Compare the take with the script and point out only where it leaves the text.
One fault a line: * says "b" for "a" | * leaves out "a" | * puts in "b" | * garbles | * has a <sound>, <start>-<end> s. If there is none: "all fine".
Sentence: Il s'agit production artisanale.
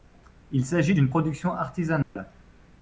* puts in "d'une"
* has a dropout, 2.0-2.2 s